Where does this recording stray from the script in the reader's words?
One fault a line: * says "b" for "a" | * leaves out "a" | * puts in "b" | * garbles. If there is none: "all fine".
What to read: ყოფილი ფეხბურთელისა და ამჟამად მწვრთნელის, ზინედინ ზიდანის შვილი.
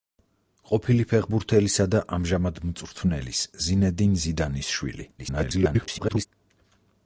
* garbles